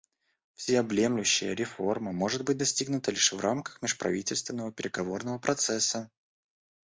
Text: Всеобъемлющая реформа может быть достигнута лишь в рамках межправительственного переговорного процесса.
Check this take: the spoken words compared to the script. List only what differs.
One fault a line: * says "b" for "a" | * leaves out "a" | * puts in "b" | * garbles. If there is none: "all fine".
all fine